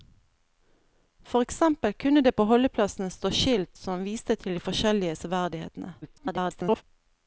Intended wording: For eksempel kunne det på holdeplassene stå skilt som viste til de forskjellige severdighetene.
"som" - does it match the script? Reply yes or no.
yes